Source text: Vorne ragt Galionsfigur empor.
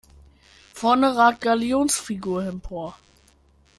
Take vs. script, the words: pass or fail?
pass